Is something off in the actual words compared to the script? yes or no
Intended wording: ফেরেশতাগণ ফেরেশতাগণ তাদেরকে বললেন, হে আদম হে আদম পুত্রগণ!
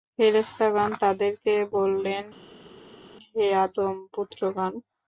yes